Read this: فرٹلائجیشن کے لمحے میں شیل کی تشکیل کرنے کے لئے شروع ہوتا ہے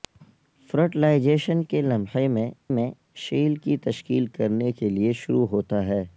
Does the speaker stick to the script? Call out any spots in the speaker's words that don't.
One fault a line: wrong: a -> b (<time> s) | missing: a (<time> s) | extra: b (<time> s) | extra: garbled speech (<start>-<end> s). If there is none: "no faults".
extra: میں (2.7 s)